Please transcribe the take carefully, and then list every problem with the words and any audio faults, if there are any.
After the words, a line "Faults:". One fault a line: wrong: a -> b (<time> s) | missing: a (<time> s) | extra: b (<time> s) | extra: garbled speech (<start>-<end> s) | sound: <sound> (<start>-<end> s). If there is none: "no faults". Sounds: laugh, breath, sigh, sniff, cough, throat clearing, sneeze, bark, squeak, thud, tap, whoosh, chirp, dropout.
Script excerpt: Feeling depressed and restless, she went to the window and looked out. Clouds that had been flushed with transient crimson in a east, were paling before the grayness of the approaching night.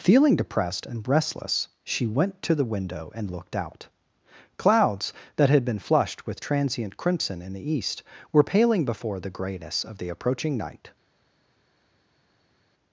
Feeling depressed and restless, she went to the window and looked out. Clouds that had been flushed with transient crimson in the east, were paling before the grayness of the approaching night.
Faults:
wrong: a -> the (7.5 s)